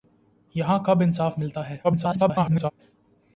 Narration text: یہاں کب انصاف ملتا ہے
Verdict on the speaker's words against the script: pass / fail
fail